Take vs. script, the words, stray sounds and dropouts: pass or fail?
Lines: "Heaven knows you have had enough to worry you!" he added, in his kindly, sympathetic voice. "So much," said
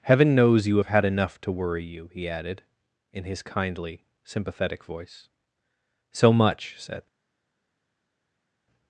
pass